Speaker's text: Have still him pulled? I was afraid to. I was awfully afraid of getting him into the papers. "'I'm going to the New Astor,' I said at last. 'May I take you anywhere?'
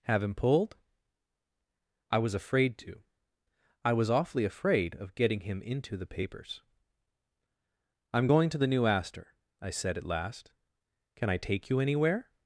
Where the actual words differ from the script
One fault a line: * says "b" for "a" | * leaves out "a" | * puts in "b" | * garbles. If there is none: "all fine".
* leaves out "still"
* says "Can" for "May"